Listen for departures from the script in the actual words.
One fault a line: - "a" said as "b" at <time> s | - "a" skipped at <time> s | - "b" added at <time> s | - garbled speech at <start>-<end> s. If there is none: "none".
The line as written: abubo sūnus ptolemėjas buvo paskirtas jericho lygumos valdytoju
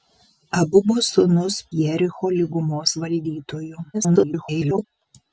- "ptolemėjas buvo paskirtas" skipped at 1.6 s
- garbled speech at 3.9-4.8 s